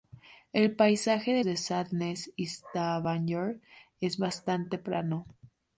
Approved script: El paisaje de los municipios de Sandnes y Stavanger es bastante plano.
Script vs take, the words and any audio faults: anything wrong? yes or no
yes